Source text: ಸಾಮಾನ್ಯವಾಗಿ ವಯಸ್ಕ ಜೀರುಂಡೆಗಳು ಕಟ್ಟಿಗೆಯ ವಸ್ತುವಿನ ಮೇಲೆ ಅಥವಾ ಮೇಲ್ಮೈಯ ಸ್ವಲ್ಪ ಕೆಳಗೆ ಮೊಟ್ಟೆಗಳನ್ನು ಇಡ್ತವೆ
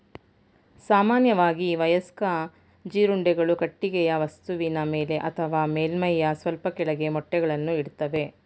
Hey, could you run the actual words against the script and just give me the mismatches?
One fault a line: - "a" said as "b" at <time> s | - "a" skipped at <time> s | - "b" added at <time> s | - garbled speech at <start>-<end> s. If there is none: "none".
none